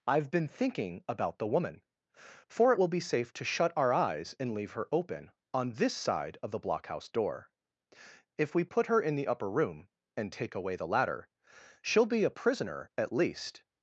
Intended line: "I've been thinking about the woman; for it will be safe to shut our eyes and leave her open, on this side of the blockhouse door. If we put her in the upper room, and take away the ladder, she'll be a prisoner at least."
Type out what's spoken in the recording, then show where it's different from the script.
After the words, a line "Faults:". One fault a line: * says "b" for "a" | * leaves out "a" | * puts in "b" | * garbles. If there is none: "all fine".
"I've been thinking about the woman; for it will be safe to shut our eyes and leave her open, on this side of the blockhouse door. If we put her in the upper room, and take away the ladder, she'll be a prisoner at least."
Faults:
all fine